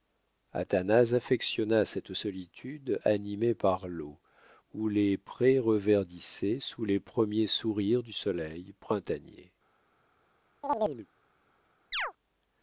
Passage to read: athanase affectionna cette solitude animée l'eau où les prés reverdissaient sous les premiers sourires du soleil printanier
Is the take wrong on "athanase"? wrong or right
right